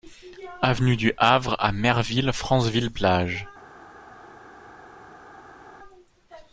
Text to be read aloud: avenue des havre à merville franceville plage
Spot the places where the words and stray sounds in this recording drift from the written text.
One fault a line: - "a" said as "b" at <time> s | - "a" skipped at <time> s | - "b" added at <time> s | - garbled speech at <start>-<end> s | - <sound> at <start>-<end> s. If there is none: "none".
- "des" said as "du" at 1.0 s